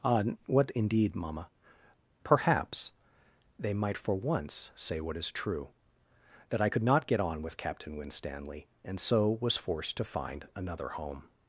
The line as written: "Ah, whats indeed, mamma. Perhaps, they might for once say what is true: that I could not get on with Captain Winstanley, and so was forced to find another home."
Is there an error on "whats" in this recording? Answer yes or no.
yes